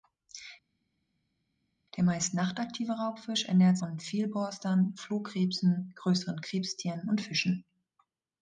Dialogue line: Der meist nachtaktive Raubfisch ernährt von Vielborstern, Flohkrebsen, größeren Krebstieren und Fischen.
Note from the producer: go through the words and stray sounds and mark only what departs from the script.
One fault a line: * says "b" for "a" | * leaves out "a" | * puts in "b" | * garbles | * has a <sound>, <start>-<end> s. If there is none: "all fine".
all fine